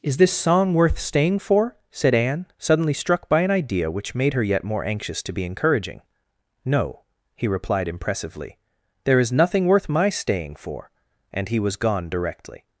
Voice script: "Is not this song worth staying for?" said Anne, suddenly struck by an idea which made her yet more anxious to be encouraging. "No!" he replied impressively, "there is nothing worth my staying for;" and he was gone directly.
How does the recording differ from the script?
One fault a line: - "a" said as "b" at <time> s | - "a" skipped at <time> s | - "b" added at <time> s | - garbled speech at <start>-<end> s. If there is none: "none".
- "not" skipped at 0.2 s